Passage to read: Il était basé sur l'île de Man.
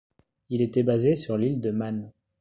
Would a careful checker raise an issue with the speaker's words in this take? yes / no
no